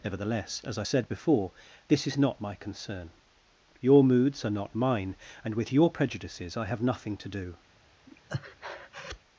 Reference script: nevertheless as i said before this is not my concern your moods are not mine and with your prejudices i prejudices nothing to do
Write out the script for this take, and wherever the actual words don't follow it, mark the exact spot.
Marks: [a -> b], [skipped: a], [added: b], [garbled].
nevertheless as i said before this is not my concern your moods are not mine and with your prejudices i [prejudices -> have] nothing to do